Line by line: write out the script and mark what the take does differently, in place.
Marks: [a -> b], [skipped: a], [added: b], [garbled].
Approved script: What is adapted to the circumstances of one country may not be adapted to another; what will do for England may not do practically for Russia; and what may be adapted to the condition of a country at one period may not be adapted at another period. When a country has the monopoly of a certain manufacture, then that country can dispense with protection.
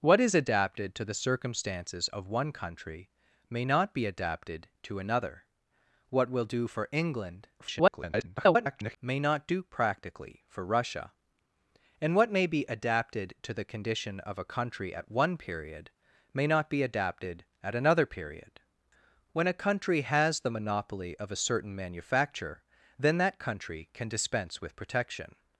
What is adapted to the circumstances of one country may not be adapted to another; what will do for England [garbled] may not do practically for Russia; and what may be adapted to the condition of a country at one period may not be adapted at another period. When a country has the monopoly of a certain manufacture, then that country can dispense with protection.